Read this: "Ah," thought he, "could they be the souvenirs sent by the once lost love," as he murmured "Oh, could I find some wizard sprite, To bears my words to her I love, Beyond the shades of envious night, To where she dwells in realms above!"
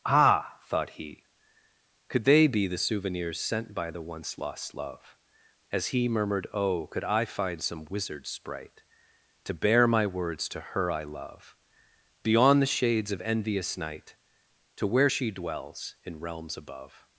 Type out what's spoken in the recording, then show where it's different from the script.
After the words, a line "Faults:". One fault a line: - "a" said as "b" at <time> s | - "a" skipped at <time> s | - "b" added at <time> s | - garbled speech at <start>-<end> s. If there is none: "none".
"Ah," thought he, "could they be the souvenirs sent by the once lost love," as he murmured "Oh, could I find some wizard sprite, To bear my words to her I love, Beyond the shades of envious night, To where she dwells in realms above!"
Faults:
- "bears" said as "bear" at 9.5 s